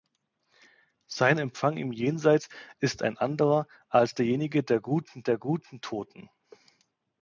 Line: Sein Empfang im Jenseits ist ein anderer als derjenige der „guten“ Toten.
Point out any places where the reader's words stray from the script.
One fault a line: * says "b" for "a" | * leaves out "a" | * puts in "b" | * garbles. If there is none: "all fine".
* puts in "der guten"